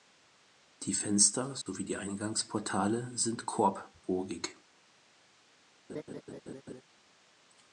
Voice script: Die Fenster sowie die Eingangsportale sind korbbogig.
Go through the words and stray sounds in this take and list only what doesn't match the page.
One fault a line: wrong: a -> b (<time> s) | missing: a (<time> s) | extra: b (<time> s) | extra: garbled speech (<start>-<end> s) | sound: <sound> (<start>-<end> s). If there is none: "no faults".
sound: dropout (1.6-1.7 s)
sound: laugh (5.9-6.8 s)